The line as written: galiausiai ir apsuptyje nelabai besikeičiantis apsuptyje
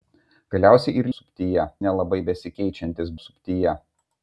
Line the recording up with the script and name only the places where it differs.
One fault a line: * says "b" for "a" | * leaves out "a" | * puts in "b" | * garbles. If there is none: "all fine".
all fine